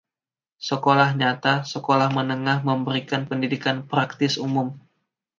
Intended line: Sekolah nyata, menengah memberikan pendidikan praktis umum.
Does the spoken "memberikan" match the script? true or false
true